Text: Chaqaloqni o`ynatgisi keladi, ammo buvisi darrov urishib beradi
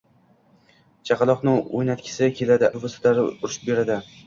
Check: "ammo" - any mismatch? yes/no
yes